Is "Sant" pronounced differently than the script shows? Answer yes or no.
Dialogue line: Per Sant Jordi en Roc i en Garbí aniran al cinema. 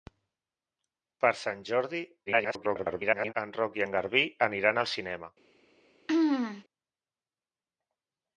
no